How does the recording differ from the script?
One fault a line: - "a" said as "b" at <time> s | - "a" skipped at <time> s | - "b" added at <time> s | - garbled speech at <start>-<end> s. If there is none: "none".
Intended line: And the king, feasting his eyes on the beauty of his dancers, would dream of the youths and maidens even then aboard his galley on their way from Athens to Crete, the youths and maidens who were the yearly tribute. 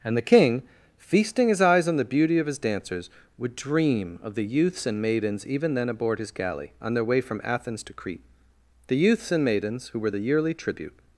none